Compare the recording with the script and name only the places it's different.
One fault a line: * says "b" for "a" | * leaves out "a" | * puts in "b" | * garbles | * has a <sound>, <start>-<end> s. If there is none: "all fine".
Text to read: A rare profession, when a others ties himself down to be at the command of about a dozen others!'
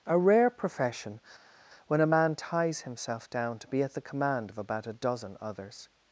* says "man" for "others"